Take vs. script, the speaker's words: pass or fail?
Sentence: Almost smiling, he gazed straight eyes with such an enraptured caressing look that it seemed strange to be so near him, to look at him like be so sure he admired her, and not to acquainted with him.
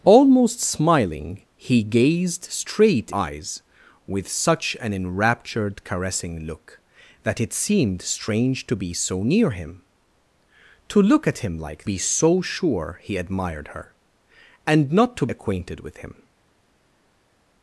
pass